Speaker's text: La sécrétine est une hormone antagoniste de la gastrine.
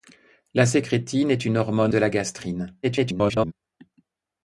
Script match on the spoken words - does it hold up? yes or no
no